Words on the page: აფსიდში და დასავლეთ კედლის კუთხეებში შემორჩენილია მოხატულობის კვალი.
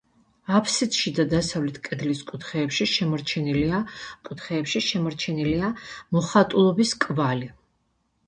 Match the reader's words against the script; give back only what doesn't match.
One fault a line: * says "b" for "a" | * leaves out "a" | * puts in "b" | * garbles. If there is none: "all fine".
* puts in "კუთხეებში შემორჩენილია"